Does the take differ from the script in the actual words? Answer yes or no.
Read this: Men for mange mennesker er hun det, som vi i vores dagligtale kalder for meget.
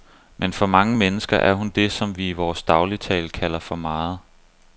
no